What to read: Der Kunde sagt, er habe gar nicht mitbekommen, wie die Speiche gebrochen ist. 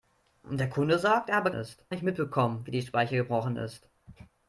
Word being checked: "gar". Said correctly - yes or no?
no